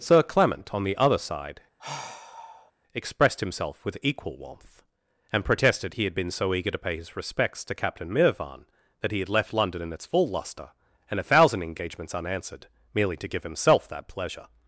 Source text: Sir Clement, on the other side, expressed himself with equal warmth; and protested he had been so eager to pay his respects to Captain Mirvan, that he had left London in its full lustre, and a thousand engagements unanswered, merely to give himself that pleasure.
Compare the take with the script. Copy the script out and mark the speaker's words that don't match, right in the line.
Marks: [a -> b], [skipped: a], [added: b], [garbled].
Sir Clement, on the other side, expressed himself with equal warmth; and protested he had been so eager to pay his respects to Captain Mirvan, that he had left London in its full lustre, and a thousand engagements unanswered, merely to give himself that pleasure.